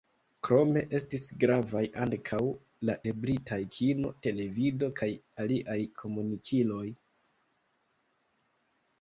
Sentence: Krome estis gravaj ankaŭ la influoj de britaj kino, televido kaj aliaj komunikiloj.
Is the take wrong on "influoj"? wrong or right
wrong